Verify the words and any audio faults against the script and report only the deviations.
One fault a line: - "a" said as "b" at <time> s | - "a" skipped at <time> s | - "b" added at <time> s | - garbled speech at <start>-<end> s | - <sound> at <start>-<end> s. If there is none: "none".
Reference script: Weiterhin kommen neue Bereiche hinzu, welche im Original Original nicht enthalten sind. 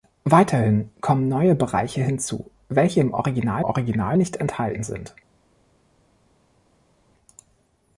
none